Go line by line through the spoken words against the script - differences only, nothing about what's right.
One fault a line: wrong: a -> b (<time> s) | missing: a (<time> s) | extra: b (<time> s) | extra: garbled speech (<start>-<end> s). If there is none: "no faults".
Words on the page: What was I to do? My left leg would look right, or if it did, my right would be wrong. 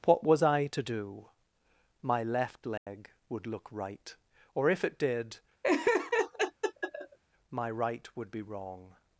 no faults